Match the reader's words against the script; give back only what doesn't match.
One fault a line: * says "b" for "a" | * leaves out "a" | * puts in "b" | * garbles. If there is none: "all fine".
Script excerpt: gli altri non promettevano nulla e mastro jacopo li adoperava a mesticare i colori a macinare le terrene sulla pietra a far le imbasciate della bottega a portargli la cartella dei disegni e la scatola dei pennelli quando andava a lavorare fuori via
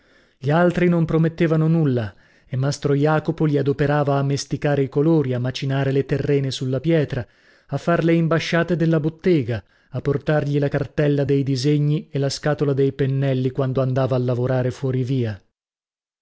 all fine